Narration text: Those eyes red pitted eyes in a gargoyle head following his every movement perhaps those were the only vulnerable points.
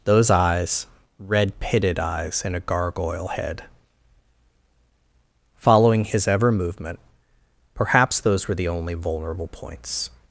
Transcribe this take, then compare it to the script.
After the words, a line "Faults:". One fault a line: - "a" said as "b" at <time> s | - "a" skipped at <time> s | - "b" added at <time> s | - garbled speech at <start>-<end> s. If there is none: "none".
Those eyes red pitted eyes in a gargoyle head following his ever movement perhaps those were the only vulnerable points.
Faults:
- "every" said as "ever" at 6.3 s